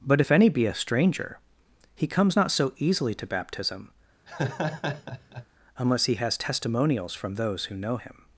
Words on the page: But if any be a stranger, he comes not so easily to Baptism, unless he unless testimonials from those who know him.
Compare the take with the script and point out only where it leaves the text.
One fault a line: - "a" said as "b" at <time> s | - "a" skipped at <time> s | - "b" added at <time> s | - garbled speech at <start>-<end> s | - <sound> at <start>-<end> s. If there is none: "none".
- laugh at 4.3-5.5 s
- "unless" said as "has" at 6.1 s